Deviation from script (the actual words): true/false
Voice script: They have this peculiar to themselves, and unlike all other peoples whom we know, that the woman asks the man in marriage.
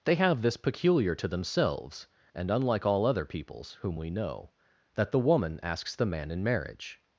false